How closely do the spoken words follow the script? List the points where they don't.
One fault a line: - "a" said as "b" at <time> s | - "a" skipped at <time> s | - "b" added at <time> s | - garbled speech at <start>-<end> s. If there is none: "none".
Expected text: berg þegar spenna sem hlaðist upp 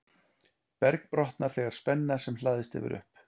- "brotnar" added at 1.1 s
- "hefur" added at 2.8 s